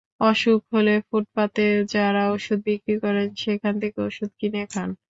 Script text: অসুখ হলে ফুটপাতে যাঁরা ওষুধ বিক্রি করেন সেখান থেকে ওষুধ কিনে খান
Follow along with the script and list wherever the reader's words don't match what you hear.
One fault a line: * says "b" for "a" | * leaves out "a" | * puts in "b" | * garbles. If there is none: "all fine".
all fine